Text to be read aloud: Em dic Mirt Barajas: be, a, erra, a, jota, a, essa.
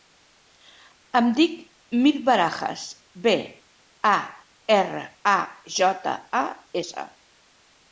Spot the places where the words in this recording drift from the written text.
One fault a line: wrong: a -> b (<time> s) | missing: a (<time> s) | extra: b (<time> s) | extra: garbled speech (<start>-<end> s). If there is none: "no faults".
no faults